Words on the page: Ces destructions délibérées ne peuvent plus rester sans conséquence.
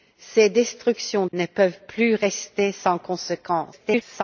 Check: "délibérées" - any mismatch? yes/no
yes